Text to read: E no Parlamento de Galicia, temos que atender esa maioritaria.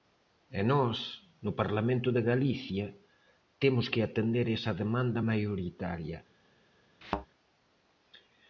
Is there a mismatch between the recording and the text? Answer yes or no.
yes